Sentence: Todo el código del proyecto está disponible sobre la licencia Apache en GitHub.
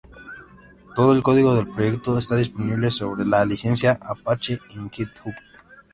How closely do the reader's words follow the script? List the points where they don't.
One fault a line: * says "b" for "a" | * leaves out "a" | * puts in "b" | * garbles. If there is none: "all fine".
all fine